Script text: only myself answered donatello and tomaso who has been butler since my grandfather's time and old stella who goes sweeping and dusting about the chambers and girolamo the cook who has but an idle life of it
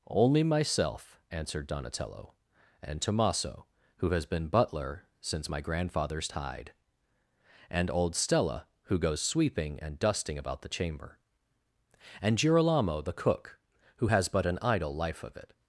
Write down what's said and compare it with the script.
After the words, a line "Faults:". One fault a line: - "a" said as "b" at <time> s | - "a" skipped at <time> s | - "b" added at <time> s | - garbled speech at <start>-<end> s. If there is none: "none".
only myself answered donatello and tomaso who has been butler since my grandfather's tide and old stella who goes sweeping and dusting about the chamber and girolamo the cook who has but an idle life of it
Faults:
- "time" said as "tide" at 6.3 s
- "chambers" said as "chamber" at 10.7 s